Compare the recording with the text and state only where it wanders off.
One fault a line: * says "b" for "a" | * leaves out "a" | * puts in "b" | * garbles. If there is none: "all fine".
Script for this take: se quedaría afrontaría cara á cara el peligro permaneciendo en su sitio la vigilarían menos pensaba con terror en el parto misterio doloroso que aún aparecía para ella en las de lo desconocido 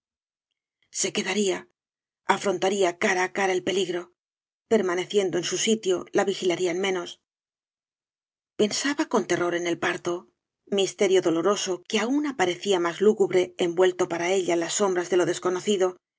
* puts in "más lúgubre envuelto"
* puts in "sombras"